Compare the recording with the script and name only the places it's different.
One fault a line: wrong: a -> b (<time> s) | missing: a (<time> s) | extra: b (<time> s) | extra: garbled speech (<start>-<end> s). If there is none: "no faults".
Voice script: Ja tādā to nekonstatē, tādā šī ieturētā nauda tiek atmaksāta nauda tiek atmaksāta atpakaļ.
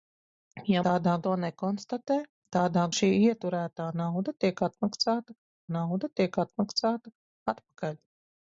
no faults